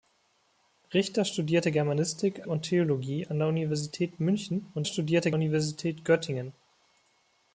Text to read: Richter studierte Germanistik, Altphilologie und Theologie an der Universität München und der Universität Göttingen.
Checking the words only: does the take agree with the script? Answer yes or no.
no